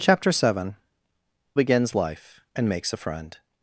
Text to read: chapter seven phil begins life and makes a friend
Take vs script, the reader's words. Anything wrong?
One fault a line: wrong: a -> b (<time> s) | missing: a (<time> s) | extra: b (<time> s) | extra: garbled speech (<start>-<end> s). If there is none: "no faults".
missing: phil (0.8 s)